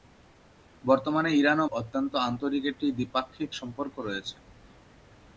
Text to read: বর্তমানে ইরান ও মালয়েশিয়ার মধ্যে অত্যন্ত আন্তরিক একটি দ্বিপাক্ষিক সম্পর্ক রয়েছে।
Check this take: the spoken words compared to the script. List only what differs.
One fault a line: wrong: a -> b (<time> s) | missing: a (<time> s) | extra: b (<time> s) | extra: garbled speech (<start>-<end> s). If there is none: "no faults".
missing: মালয়েশিয়ার মধ্যে (1.6 s)